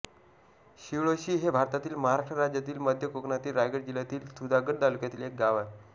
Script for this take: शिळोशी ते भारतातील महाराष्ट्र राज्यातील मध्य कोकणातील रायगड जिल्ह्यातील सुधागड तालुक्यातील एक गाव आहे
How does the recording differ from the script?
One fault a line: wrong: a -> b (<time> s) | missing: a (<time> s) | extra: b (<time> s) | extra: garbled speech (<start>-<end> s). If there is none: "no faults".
wrong: ते -> हे (1.4 s)